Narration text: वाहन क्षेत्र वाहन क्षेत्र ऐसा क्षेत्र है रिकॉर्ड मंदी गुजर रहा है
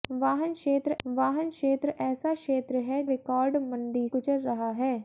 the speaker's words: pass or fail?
pass